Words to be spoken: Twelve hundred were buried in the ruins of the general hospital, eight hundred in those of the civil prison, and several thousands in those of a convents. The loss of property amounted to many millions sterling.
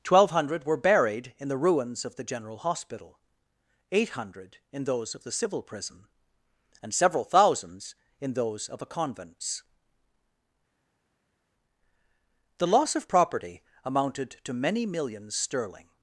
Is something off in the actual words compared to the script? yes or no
no